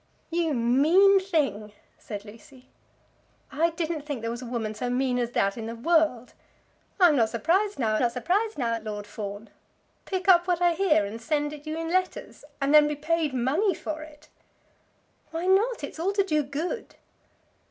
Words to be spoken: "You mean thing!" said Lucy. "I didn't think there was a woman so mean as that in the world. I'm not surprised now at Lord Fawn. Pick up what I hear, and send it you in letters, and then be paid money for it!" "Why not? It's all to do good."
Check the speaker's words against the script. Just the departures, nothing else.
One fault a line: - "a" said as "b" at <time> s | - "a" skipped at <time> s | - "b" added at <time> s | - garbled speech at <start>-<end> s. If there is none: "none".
- "not surprised now" added at 8.0 s